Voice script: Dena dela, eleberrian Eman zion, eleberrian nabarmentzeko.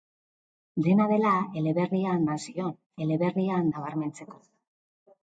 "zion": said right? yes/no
yes